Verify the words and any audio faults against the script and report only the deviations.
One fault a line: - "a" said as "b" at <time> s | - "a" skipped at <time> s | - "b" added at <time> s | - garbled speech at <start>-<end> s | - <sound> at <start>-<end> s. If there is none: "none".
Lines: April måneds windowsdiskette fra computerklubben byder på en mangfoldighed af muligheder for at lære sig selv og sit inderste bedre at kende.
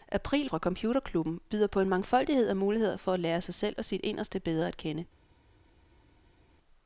- "måneds windowsdiskette" skipped at 0.5 s